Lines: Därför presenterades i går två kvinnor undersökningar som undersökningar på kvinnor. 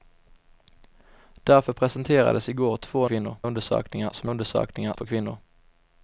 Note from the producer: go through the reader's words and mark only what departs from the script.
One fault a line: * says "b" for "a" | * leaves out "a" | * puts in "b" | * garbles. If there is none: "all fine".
all fine